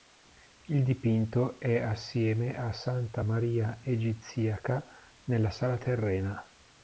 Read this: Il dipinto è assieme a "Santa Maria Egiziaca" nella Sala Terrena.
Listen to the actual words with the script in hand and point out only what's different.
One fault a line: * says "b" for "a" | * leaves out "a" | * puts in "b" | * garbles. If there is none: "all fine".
all fine